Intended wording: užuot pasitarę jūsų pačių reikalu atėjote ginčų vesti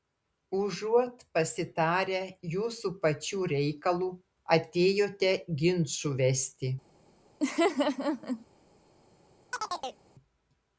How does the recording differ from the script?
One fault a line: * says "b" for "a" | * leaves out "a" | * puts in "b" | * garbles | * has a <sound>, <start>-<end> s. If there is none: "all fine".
* has a laugh, 7.4-8.5 s
* has a chirp, 9.5-10.0 s